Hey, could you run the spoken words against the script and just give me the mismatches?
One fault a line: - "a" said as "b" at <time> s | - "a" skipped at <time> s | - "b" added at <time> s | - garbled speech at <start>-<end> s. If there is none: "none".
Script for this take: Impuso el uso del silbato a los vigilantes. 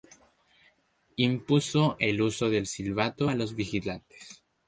none